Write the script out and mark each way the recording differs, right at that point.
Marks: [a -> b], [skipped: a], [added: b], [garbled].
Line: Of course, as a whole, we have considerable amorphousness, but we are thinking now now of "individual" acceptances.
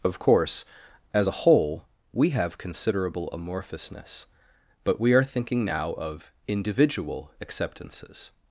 Of course, as a whole, we have considerable amorphousness, but we are thinking now [skipped: now] of "individual" acceptances.